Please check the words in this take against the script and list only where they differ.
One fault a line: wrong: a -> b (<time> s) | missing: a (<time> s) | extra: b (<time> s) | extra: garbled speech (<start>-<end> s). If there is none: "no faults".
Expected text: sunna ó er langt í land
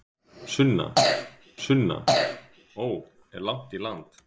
extra: sunna (1.6 s)